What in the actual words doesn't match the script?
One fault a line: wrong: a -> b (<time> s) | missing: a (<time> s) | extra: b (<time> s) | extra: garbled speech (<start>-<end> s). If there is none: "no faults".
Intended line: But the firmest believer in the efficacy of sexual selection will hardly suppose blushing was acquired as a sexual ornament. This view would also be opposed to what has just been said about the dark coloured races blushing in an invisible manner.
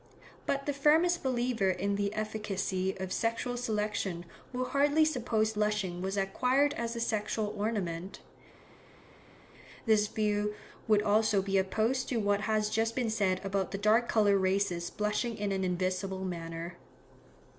no faults